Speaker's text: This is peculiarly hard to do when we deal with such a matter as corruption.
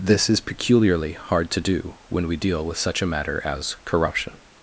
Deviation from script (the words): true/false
false